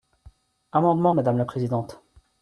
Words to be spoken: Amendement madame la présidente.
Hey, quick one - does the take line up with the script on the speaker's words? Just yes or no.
yes